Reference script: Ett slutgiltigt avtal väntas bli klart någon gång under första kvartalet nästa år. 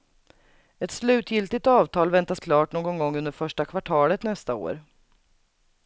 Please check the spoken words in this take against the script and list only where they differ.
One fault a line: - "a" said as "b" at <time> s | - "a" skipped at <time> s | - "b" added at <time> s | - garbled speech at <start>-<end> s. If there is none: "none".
- "bli" skipped at 2.4 s